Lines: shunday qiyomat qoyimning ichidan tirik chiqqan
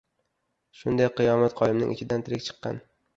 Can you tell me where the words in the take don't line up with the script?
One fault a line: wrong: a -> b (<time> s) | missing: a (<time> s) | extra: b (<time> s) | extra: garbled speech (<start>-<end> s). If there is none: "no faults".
no faults